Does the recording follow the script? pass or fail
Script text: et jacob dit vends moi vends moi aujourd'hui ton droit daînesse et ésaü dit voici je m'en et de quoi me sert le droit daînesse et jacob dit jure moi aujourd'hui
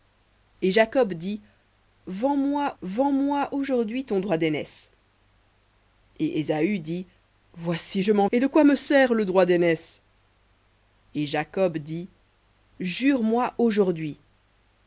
pass